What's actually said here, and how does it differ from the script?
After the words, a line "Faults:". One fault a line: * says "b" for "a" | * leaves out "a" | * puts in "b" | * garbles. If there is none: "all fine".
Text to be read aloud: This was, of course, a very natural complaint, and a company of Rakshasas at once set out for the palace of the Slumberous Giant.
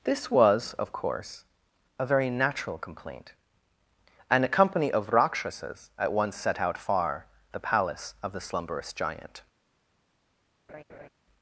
This was, of course, a very natural complaint, and a company of Rakshasas at once set out far the palace of the Slumberous Giant.
Faults:
* says "far" for "for"